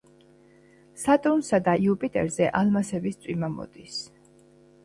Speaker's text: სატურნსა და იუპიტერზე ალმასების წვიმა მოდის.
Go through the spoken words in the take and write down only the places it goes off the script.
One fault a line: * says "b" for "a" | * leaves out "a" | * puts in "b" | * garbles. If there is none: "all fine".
all fine